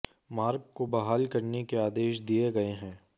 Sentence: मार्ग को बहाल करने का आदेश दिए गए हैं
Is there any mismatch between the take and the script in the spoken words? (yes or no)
yes